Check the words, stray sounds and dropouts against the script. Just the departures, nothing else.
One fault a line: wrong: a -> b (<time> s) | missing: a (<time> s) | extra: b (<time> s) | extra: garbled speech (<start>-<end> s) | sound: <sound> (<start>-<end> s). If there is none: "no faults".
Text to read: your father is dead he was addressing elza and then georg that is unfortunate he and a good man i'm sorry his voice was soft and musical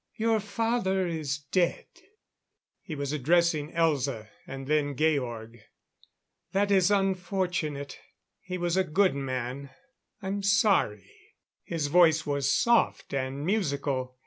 wrong: and -> was (8.6 s)